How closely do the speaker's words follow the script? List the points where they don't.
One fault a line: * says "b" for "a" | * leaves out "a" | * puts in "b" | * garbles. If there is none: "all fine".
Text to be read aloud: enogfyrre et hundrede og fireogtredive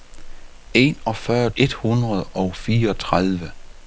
all fine